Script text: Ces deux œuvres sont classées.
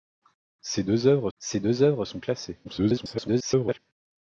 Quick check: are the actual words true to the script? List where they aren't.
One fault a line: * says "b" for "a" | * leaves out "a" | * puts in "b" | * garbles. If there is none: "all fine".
* puts in "ces deux œuvres"
* garbles